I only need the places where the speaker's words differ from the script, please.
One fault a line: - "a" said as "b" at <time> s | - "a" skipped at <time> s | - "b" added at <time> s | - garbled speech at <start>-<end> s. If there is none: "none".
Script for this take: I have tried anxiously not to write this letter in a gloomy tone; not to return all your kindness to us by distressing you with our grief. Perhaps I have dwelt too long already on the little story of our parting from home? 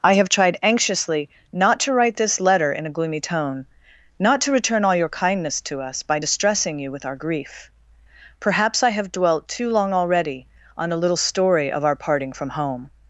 - "the" said as "a" at 10.9 s